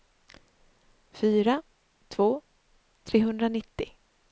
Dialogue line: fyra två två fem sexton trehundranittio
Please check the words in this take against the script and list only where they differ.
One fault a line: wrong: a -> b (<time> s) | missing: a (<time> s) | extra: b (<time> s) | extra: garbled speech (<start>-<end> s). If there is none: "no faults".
missing: två fem sexton (2.4 s)